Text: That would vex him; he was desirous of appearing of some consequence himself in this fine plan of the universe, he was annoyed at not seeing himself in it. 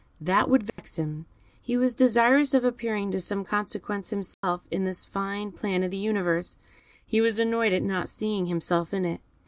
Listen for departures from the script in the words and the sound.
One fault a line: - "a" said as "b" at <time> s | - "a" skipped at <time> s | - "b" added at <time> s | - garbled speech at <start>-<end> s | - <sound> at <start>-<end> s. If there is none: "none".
- dropout at 0.7-0.8 s
- dropout at 4.3-4.4 s